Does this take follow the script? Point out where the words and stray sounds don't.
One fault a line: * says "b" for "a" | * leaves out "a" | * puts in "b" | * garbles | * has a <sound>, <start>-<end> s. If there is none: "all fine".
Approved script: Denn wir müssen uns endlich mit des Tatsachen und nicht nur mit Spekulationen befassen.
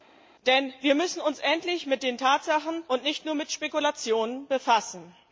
* says "den" for "des"